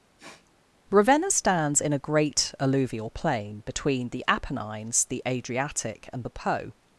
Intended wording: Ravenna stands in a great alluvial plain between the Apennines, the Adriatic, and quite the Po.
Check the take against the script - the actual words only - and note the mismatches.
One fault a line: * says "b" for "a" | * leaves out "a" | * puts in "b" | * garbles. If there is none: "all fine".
* leaves out "quite"